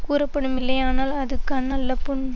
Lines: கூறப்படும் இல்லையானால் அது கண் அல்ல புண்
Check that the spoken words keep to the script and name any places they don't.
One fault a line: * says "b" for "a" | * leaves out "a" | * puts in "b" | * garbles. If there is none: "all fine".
all fine